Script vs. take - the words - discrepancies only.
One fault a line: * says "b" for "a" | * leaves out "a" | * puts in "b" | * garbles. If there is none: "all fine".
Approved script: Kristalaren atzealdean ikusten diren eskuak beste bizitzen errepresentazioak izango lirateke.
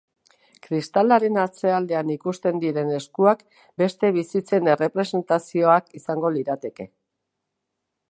all fine